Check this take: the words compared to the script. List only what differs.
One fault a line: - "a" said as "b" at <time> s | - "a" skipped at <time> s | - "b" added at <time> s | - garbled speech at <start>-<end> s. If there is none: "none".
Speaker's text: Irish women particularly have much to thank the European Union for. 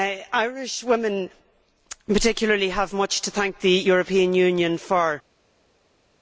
none